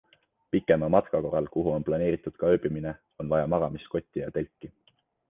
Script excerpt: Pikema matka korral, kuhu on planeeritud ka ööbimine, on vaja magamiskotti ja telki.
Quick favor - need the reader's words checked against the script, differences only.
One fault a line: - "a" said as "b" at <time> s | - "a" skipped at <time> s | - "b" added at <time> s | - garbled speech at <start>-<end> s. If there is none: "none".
none